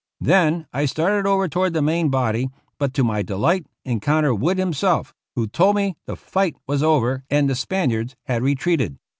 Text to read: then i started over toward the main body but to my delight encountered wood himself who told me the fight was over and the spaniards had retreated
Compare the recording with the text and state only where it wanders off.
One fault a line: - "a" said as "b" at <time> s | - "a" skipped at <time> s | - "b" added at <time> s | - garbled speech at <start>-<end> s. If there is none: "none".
none